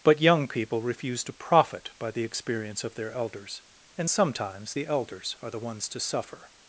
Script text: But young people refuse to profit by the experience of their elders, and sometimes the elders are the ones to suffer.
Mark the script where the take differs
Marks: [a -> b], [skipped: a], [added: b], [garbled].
But young people refuse to profit by the experience of their elders, and sometimes the elders are the ones to suffer.